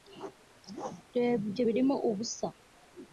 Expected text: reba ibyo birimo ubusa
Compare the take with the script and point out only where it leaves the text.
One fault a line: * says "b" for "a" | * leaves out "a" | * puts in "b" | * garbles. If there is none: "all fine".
all fine